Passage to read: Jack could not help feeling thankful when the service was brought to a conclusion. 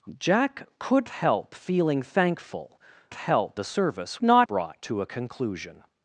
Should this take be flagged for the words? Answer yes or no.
yes